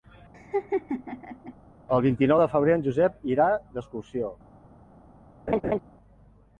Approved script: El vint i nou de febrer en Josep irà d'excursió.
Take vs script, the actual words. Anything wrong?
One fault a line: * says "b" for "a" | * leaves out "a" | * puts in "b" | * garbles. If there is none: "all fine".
all fine